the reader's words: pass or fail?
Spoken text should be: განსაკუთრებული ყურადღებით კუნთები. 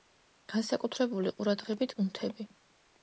pass